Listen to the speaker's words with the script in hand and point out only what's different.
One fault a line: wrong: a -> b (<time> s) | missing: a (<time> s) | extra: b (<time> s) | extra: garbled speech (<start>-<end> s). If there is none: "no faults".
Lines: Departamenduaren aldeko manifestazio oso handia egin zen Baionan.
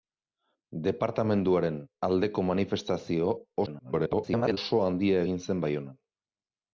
extra: garbled speech (3.7-4.6 s)